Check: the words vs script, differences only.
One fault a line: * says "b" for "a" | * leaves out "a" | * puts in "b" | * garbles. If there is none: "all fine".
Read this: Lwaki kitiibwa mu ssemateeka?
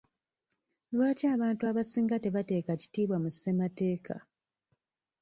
* puts in "abantu abasinga tebateeka"